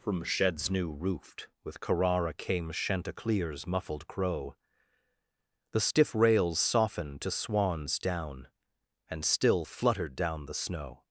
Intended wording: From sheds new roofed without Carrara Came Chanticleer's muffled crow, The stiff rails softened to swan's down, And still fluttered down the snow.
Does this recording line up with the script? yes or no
no